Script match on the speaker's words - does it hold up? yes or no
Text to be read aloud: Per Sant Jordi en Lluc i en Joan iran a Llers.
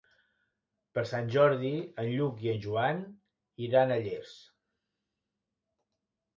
yes